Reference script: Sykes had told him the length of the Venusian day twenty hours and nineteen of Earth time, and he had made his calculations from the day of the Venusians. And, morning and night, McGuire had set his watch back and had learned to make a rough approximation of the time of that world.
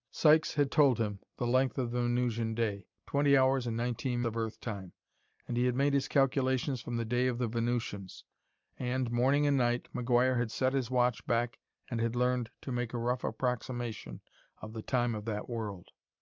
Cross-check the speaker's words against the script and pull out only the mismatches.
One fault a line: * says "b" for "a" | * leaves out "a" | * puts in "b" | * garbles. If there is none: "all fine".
all fine